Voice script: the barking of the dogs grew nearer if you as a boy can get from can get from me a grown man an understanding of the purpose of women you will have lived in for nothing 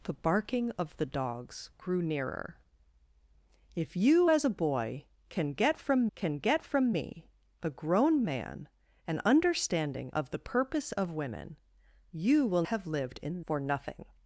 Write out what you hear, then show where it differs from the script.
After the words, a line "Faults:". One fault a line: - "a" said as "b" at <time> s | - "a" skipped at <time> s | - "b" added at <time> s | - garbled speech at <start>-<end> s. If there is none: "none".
the barking of the dogs grew nearer if you as a boy can get from can get from me a grown man an understanding of the purpose of women you will have lived in for nothing
Faults:
none